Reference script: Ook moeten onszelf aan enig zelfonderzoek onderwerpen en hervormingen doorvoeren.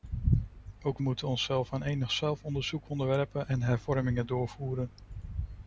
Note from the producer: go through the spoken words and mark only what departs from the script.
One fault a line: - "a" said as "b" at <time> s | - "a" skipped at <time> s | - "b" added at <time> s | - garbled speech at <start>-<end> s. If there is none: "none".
none